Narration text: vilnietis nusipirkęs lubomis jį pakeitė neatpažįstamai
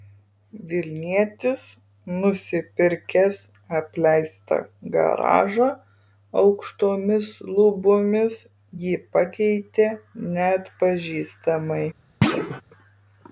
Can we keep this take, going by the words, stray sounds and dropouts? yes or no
no